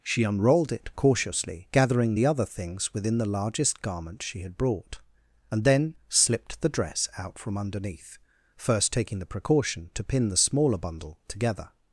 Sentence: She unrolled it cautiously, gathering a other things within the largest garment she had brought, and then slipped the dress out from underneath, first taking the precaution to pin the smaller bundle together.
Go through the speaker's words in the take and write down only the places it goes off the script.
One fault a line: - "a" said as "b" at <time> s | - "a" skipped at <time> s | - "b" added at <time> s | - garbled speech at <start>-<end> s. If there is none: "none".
- "a" said as "the" at 2.1 s